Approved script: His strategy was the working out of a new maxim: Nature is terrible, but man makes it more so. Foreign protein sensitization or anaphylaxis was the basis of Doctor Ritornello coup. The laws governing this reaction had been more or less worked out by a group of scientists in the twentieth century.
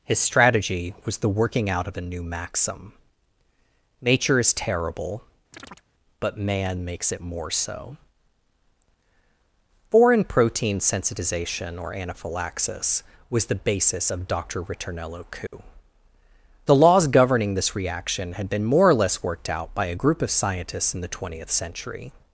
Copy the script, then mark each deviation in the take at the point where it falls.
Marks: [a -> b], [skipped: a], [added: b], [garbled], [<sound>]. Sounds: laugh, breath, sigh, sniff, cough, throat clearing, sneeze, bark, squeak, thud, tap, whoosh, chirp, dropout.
His strategy was the working out of a new maxim: Nature is terrible, [chirp] but man makes it more so. Foreign protein sensitization or anaphylaxis was the basis of Doctor Ritornello coup. [dropout] The laws governing this reaction had been more or less worked out by a group of scientists in the twentieth century.